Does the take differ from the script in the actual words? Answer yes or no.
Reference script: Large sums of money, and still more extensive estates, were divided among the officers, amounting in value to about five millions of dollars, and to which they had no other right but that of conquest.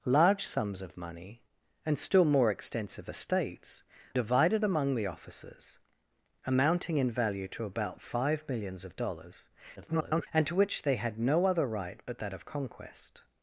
yes